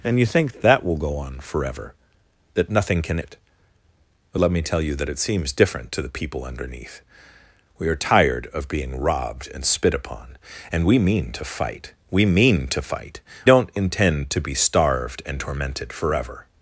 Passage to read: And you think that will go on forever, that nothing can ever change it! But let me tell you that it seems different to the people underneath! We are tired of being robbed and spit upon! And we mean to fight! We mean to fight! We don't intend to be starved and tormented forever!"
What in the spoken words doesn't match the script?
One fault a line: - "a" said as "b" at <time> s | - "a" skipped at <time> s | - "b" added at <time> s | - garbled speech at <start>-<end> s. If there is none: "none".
- "ever change" skipped at 3.2 s
- "We" skipped at 13.2 s